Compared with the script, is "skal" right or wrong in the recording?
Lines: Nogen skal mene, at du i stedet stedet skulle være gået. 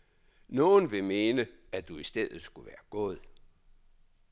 wrong